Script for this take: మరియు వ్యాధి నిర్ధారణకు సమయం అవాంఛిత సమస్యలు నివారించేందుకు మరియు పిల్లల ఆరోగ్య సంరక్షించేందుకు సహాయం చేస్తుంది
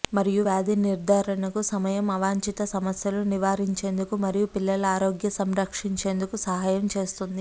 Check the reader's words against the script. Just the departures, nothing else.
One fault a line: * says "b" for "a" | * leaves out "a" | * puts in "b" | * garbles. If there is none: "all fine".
all fine